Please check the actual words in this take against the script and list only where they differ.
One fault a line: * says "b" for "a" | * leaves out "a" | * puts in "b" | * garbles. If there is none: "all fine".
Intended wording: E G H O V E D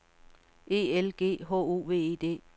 * puts in "L"